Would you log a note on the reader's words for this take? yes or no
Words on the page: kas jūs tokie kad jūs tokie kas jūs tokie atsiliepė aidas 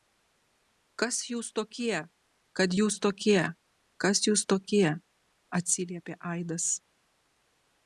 no